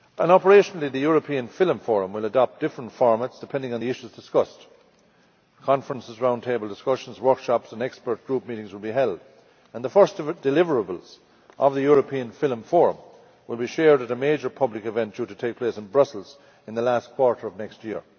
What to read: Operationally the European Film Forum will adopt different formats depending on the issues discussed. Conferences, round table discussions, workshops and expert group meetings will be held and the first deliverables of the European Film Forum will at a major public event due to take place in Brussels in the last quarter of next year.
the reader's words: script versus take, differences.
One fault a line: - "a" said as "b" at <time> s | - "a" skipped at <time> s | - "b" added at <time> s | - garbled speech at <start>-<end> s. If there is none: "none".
- "be shared" added at 13.6 s